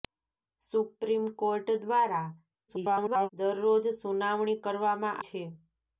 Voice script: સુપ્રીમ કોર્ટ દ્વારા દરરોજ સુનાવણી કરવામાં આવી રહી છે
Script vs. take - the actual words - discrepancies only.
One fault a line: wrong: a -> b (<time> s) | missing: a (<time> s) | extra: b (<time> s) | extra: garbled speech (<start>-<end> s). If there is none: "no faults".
extra: garbled speech (2.7-3.3 s)
missing: આવી રહી (5.2 s)